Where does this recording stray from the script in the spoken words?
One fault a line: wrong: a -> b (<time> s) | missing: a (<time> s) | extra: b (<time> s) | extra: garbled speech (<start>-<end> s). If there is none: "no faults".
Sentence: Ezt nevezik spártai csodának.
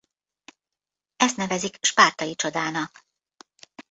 no faults